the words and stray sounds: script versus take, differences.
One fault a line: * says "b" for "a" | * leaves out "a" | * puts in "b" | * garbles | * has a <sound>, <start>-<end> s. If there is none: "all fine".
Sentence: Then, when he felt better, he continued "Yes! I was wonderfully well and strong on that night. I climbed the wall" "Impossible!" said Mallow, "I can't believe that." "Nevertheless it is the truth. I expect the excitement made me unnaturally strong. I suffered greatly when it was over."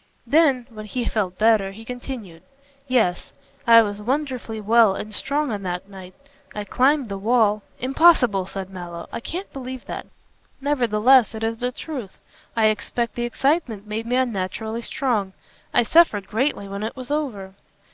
all fine